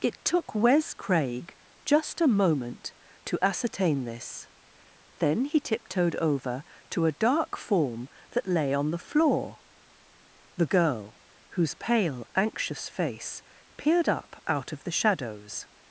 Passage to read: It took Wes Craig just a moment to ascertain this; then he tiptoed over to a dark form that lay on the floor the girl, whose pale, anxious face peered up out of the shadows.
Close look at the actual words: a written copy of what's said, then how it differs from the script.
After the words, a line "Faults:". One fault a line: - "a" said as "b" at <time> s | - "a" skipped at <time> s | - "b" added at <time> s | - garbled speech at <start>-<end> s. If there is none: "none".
It took Wes Craig just a moment to ascertain this; then he tiptoed over to a dark form that lay on the floor the girl, whose pale, anxious face peered up out of the shadows.
Faults:
none